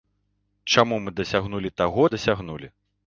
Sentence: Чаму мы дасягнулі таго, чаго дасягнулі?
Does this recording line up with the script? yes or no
no